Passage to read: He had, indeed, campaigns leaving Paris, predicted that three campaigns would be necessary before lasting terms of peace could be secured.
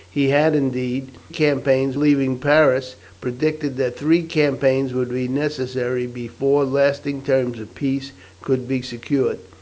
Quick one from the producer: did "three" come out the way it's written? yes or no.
yes